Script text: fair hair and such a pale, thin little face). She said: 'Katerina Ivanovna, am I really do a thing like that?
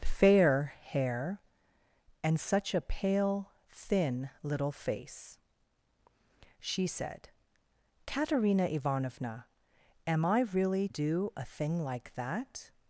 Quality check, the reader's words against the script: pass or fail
pass